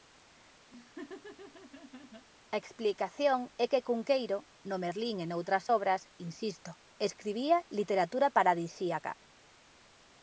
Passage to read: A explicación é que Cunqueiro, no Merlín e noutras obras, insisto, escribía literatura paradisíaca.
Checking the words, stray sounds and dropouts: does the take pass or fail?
fail